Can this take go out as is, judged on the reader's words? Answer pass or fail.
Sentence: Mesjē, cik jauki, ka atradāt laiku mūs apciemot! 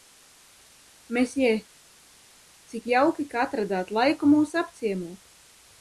pass